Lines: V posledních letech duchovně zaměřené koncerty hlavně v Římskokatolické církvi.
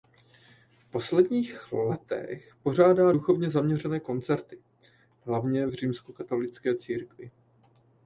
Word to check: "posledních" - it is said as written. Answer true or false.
true